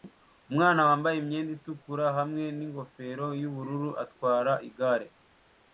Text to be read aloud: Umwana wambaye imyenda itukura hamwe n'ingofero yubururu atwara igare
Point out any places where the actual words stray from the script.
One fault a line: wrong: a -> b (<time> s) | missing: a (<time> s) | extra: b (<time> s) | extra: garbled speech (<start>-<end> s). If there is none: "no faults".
no faults